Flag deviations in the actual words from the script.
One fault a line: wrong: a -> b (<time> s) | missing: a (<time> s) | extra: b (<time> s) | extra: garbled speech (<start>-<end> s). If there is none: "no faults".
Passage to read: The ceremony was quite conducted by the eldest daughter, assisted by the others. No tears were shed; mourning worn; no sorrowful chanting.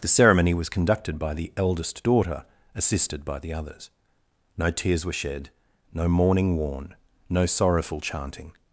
missing: quite (0.7 s)
extra: no (5.9 s)